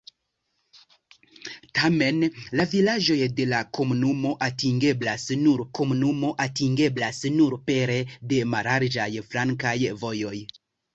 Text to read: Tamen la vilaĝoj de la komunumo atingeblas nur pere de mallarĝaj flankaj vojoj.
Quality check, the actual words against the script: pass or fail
fail